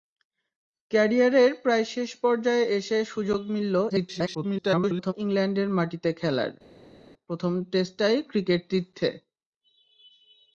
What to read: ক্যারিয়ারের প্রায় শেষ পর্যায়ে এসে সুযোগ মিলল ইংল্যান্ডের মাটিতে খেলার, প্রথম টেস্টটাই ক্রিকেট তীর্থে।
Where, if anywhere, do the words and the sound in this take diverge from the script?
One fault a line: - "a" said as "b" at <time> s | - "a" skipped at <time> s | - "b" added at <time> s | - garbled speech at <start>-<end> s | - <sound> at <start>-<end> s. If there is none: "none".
- garbled speech at 3.9-5.1 s